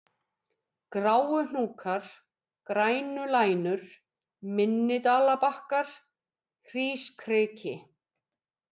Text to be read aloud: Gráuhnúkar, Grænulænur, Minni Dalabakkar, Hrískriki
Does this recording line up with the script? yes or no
yes